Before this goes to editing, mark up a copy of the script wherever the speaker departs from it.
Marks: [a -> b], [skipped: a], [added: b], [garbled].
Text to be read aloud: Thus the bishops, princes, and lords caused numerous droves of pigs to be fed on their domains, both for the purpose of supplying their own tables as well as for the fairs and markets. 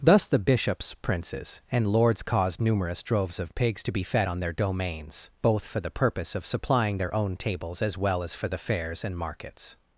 Thus the bishops, princes, and lords caused numerous droves of pigs to be fed on their domains, both for the purpose of supplying their own tables as well as for the fairs and markets.